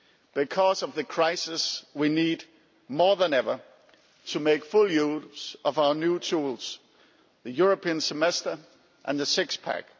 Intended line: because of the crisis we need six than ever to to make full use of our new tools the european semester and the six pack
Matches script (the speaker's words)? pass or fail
fail